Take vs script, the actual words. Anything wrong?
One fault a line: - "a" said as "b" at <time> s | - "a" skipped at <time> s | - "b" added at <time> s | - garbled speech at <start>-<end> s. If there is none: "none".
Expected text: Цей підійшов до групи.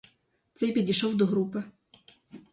none